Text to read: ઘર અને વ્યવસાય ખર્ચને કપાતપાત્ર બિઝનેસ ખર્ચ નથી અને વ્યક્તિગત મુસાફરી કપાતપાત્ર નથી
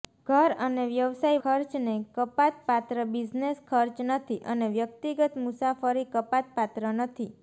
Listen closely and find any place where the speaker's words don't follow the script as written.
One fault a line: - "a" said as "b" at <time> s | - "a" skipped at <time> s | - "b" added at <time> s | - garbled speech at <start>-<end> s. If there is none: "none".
none